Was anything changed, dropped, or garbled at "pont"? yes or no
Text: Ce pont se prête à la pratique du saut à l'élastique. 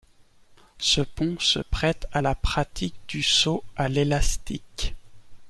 no